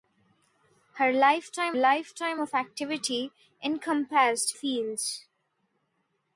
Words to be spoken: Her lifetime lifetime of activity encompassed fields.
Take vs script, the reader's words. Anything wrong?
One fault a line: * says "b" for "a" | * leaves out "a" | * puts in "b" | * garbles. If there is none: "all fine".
all fine